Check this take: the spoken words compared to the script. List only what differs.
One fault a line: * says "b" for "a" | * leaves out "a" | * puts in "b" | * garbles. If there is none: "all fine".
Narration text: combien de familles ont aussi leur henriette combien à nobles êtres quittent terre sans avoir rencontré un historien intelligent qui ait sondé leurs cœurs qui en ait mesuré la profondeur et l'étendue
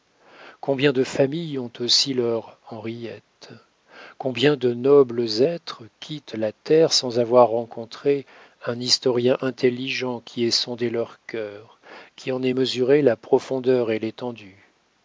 * says "de" for "à"
* puts in "la"